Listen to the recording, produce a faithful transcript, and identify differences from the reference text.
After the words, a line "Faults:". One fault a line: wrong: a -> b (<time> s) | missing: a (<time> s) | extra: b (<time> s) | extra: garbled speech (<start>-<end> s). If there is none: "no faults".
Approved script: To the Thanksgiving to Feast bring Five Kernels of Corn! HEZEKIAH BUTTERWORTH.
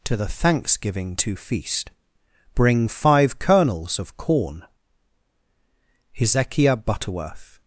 To the Thanksgiving to Feast bring Five Kernels of Corn! HEZEKIAH BUTTERWORTH.
Faults:
no faults